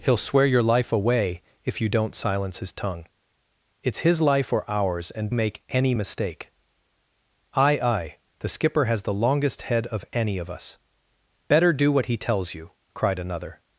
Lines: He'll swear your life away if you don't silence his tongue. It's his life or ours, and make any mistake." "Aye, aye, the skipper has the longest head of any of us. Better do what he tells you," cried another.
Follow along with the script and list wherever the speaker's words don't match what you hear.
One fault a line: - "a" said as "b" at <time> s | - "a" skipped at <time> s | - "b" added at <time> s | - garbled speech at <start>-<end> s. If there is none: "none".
none